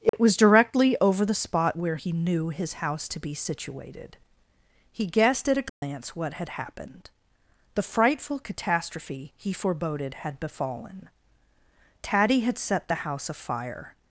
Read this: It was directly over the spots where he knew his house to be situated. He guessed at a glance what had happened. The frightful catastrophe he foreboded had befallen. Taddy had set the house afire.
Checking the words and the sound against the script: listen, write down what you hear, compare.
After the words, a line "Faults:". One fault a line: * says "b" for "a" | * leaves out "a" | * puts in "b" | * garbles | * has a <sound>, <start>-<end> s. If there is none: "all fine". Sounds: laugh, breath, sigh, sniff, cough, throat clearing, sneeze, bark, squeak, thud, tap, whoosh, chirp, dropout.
It was directly over the spot where he knew his house to be situated. He guessed at a glance what had happened. The frightful catastrophe he foreboded had befallen. Taddy had set the house afire.
Faults:
* has a dropout, 0.1-0.1 s
* says "spot" for "spots"
* has a dropout, 5.7-5.8 s